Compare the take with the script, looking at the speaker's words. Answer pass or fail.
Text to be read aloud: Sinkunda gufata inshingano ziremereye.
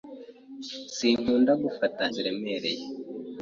fail